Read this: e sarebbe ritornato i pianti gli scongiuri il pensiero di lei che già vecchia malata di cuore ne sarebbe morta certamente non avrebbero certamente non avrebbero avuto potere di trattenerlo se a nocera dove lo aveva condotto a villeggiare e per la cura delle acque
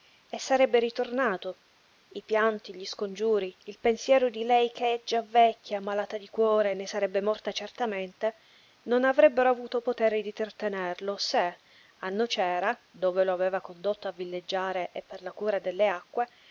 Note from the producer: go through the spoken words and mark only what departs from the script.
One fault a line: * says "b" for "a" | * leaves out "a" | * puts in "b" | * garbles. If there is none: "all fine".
* leaves out "certamente non avrebbero"